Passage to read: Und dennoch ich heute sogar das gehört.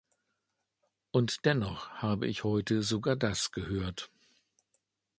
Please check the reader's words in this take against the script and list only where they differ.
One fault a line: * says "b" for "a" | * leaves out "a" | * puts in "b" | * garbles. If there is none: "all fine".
* puts in "habe"